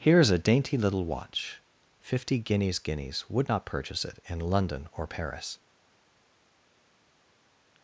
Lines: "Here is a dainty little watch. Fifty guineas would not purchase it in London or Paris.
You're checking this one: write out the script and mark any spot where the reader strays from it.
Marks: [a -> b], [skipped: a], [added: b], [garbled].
"Here is a dainty little watch. Fifty guineas [added: guineas] would not purchase it in London or Paris.